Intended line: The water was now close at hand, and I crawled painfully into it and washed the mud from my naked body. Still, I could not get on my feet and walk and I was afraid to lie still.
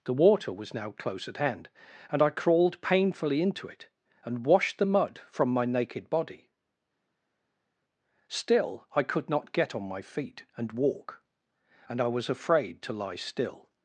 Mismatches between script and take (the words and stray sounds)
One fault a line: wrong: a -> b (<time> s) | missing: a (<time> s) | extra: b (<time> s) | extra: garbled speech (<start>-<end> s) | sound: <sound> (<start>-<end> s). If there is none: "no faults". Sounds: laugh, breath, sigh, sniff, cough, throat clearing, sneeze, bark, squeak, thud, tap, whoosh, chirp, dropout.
no faults